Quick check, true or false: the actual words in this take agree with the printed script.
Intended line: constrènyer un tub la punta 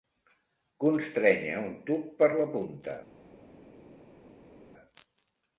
false